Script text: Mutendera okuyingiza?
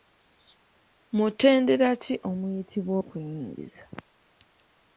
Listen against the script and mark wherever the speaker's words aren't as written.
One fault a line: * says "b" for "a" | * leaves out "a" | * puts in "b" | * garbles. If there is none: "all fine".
* puts in "ki omuyitibwa"